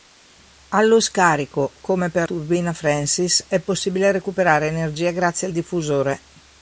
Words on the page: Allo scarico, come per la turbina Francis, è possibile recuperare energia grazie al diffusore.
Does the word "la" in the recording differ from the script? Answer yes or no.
yes